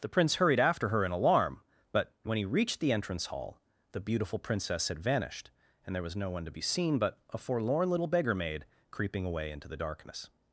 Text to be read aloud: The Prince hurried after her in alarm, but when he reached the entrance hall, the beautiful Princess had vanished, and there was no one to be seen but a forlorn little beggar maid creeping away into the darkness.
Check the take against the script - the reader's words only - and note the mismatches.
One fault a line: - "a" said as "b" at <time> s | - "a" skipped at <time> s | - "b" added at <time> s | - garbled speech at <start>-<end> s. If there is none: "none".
none